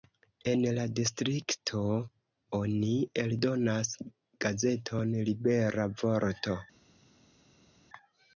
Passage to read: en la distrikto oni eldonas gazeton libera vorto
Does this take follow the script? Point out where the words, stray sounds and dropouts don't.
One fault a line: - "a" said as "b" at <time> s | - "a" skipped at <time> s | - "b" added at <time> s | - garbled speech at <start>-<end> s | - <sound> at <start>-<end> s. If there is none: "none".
none